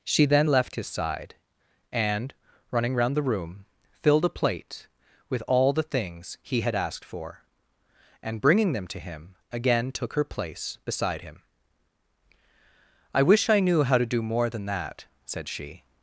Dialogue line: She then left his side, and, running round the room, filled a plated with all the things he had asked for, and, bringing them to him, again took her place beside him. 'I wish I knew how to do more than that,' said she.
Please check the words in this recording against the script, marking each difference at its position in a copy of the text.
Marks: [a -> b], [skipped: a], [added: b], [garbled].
She then left his side, and, running round the room, filled a [plated -> plate] with all the things he had asked for, and, bringing them to him, again took her place beside him. 'I wish I knew how to do more than that,' said she.